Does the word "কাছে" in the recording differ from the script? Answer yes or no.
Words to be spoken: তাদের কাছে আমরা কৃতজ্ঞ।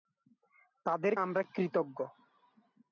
yes